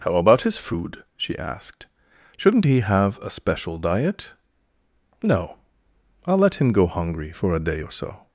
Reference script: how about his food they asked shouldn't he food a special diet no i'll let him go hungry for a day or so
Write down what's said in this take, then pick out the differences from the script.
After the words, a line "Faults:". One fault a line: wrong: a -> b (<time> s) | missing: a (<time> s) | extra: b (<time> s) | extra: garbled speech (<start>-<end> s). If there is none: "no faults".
how about his food she asked shouldn't he have a special diet no i'll let him go hungry for a day or so
Faults:
wrong: they -> she (1.2 s)
wrong: food -> have (2.8 s)